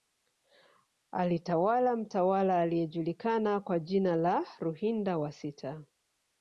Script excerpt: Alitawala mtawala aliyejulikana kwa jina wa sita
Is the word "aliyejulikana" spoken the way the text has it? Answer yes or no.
yes